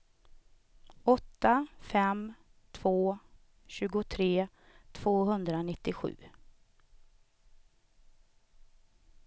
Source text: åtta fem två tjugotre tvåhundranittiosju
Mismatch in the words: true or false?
false